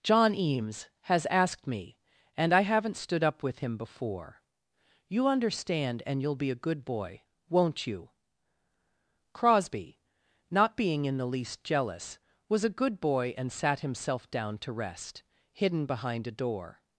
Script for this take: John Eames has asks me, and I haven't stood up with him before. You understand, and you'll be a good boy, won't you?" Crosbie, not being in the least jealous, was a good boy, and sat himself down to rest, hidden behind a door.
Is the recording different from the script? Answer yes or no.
yes